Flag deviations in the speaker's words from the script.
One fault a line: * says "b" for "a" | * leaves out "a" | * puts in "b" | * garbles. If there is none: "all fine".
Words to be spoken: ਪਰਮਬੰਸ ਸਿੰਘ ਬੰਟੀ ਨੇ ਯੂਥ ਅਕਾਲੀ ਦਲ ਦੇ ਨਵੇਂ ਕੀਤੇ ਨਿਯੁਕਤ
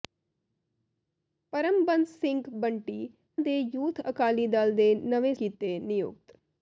all fine